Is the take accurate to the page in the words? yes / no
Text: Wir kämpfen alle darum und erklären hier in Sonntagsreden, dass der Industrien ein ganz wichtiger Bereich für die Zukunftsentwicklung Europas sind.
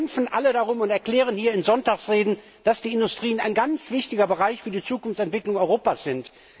no